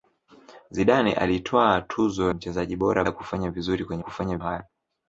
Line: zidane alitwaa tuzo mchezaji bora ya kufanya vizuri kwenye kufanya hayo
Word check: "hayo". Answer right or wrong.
right